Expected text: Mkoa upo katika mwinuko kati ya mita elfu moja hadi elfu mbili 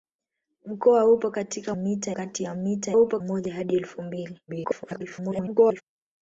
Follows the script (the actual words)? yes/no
no